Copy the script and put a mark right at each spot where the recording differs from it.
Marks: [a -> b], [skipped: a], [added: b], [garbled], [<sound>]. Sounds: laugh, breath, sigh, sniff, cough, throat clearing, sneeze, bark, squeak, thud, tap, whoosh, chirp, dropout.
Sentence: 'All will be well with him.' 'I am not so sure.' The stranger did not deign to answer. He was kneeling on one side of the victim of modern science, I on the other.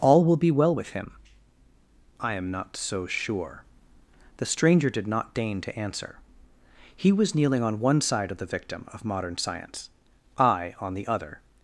'All will be well with him.' 'I am not so sure.' The stranger did not deign to answer. He was kneeling on one side of the victim of modern science, I on the other.